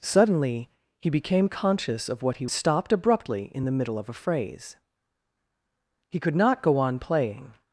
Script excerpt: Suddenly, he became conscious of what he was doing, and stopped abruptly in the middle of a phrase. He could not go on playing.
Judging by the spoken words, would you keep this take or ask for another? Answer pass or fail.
fail